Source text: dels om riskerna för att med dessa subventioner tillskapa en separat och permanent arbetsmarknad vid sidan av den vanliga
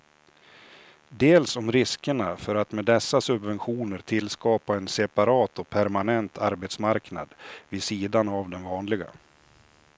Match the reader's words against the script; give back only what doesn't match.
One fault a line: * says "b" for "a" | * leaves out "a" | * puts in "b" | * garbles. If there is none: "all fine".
all fine